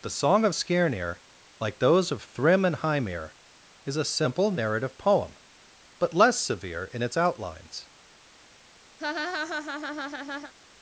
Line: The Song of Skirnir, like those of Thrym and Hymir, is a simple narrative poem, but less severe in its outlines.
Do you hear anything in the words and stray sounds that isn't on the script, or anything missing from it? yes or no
yes